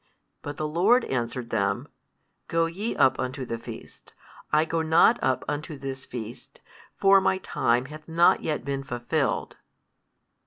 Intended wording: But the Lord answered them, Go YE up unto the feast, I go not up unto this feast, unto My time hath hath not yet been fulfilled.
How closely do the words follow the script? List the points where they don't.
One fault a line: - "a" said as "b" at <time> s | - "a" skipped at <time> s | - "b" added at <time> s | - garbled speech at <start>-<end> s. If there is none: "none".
- "unto" said as "for" at 7.0 s
- "hath" skipped at 8.1 s